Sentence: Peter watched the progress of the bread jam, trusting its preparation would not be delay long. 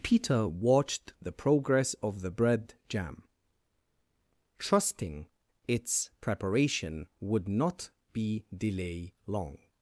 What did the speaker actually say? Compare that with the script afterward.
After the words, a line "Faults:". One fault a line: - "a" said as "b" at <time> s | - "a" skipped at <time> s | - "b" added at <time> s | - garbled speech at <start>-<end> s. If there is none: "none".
Peter watched the progress of the bread jam, trusting its preparation would not be delay long.
Faults:
none